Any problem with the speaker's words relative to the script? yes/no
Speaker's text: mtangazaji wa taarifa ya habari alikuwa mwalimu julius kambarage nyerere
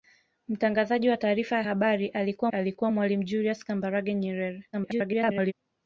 yes